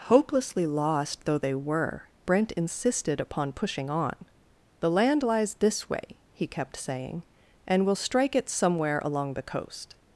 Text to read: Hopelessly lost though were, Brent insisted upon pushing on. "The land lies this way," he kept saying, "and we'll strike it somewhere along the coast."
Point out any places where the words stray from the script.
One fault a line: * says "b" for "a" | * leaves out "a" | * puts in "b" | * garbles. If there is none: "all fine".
* puts in "they"